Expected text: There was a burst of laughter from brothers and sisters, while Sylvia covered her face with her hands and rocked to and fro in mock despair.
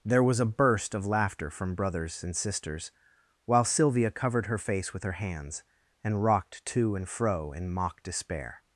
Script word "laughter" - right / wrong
right